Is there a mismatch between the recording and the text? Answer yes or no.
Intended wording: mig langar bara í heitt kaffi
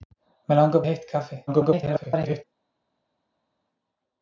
yes